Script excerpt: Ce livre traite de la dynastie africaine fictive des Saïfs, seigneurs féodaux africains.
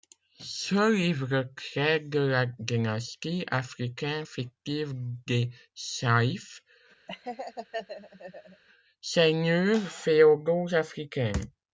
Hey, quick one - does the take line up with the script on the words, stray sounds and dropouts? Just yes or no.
no